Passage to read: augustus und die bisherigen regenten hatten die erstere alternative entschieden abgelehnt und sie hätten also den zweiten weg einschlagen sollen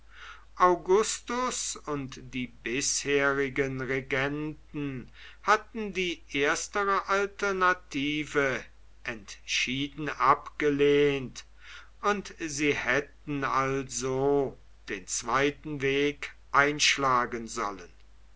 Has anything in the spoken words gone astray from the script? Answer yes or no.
no